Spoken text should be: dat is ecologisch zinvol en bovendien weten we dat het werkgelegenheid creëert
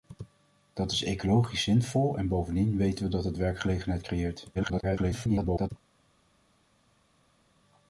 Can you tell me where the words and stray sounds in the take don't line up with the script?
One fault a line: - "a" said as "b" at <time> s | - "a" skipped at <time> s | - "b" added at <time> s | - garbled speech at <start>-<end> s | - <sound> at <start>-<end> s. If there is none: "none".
- garbled speech at 4.5-5.7 s